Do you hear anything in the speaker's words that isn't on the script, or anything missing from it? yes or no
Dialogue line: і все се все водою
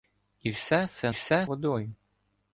no